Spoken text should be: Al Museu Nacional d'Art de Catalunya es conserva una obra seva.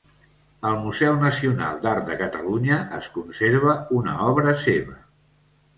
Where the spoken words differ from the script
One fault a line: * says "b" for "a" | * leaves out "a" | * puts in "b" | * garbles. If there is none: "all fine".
all fine